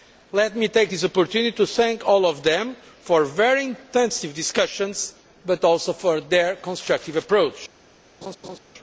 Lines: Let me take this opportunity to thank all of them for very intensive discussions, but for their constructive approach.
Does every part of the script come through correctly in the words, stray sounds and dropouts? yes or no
no